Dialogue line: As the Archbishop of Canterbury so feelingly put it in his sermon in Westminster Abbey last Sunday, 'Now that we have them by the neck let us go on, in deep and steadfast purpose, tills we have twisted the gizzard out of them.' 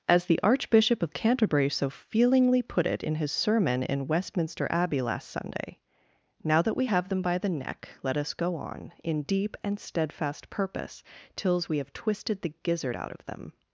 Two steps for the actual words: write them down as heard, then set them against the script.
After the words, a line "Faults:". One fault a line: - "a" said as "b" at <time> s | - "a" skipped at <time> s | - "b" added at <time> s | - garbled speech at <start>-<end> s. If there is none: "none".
As the Archbishop of Canterbury so feelingly put it in his sermon in Westminster Abbey last Sunday, 'Now that we have them by the neck let us go on, in deep and steadfast purpose, tills we have twisted the gizzard out of them.'
Faults:
none